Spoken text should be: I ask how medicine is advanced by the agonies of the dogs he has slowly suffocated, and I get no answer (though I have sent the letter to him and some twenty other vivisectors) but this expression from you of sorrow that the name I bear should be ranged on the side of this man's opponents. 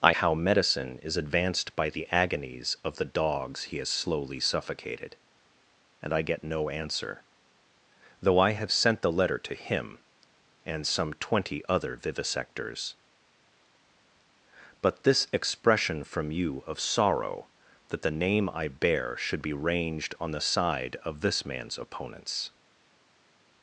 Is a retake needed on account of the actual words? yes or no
yes